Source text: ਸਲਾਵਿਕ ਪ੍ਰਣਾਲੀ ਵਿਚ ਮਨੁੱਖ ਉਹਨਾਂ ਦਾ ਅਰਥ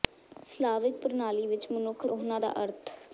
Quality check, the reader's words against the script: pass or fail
pass